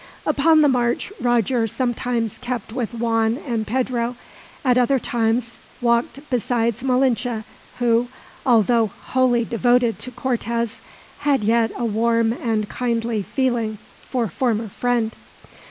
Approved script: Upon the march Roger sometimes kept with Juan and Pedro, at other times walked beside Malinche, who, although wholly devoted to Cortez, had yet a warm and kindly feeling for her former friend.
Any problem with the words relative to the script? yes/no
yes